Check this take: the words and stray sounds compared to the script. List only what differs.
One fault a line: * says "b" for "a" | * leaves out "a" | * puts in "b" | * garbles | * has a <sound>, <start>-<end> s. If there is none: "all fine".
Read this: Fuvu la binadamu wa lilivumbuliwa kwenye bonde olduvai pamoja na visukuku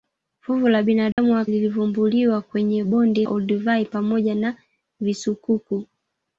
* has a dropout, 1.1-1.2 s